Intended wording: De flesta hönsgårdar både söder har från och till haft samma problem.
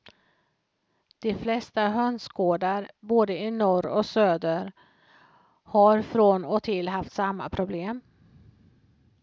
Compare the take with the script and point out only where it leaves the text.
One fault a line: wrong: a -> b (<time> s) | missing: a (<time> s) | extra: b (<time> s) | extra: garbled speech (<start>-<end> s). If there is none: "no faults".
extra: i norr och (3.4 s)